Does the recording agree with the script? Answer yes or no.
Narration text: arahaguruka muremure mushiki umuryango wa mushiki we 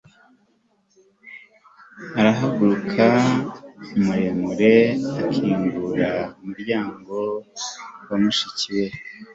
no